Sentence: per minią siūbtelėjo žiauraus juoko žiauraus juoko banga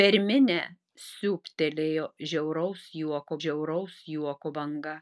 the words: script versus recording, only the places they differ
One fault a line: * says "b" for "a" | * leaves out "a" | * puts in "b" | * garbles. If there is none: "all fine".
all fine